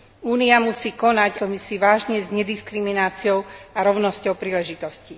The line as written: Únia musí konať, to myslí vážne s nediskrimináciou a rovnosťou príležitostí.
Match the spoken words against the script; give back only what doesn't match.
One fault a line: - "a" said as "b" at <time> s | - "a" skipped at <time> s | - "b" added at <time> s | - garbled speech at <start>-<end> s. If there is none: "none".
none